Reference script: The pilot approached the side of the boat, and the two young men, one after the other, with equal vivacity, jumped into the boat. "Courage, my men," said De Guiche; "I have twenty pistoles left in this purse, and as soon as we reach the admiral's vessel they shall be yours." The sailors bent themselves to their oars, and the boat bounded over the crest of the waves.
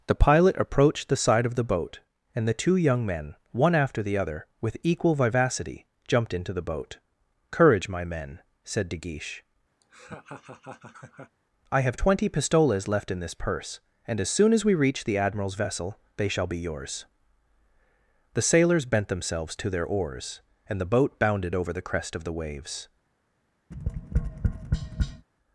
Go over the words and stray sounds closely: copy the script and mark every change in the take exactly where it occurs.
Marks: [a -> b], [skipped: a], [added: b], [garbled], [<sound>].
The pilot approached the side of the boat, and the two young men, one after the other, with equal vivacity, jumped into the boat. "Courage, my men," said De Guiche; [laugh] "I have twenty pistoles left in this purse, and as soon as we reach the admiral's vessel they shall be yours." The sailors bent themselves to their oars, and the boat bounded over the crest of the waves. [tap]